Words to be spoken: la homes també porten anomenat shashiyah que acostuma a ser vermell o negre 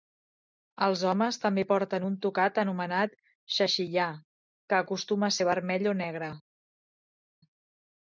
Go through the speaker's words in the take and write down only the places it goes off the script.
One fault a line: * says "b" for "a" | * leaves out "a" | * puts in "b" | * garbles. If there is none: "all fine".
* says "els" for "la"
* puts in "un tocat"